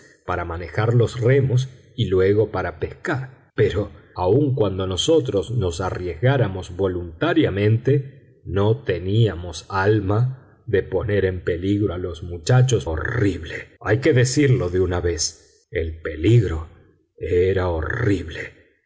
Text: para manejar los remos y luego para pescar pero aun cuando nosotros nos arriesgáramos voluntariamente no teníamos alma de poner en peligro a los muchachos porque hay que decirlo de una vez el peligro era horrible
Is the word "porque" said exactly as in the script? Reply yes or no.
no